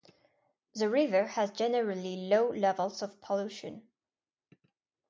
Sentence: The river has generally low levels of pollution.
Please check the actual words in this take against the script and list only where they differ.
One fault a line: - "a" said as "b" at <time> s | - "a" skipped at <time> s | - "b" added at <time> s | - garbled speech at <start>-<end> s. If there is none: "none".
none